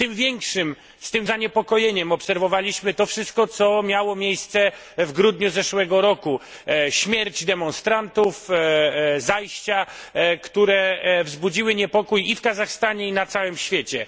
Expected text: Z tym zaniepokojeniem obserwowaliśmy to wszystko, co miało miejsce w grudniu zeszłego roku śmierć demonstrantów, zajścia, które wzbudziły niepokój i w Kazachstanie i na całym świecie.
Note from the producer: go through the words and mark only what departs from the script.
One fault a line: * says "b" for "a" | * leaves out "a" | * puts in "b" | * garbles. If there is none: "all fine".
all fine